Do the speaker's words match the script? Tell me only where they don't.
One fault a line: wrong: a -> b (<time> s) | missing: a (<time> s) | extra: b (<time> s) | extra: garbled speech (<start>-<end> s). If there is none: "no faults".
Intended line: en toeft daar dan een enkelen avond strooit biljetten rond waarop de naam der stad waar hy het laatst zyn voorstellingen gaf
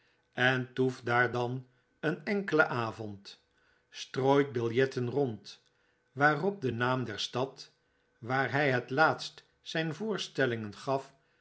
no faults